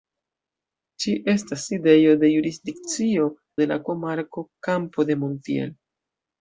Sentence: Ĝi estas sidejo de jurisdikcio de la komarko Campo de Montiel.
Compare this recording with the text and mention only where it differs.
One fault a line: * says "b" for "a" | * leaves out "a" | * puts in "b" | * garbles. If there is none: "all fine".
all fine